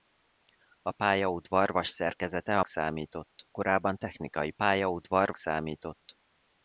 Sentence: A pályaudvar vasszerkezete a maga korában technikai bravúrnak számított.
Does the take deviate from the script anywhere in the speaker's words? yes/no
yes